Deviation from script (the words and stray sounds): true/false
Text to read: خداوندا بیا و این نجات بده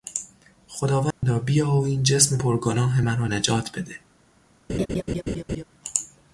true